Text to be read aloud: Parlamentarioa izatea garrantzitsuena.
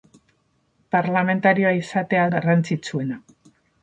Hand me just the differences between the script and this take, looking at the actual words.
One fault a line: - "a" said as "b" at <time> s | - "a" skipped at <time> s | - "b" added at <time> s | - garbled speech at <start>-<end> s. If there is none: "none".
none